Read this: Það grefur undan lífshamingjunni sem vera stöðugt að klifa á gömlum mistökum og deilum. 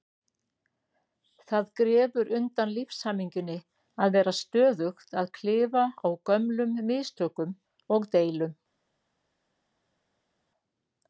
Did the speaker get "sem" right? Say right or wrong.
wrong